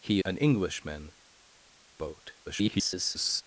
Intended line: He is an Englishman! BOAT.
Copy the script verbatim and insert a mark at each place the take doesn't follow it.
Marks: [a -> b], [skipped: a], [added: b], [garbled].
He [skipped: is] an Englishman! BOAT. [garbled]